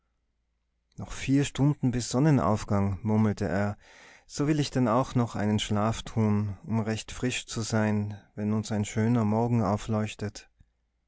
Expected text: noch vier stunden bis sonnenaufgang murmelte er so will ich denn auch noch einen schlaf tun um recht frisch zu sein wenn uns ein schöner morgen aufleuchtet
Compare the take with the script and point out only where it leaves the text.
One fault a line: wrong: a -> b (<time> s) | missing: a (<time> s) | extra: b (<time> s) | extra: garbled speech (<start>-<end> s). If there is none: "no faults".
no faults